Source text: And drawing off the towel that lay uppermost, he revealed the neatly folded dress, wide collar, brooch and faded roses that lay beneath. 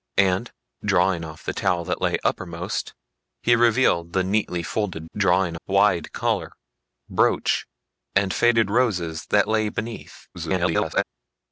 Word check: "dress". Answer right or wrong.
wrong